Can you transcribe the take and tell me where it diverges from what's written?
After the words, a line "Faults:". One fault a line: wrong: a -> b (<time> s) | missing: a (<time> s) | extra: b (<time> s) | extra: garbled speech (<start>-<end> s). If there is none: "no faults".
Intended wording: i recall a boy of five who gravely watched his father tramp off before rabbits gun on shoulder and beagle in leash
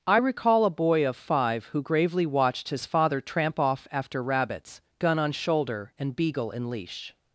i recall a boy of five who gravely watched his father tramp off after rabbits gun on shoulder and beagle in leash
Faults:
wrong: before -> after (3.9 s)